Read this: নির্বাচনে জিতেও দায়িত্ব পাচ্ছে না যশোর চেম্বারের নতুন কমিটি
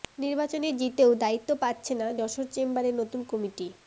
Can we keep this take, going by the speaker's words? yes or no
yes